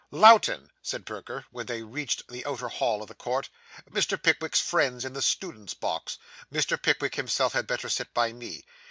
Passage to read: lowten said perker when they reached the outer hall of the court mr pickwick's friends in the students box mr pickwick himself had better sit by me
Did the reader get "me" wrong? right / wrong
right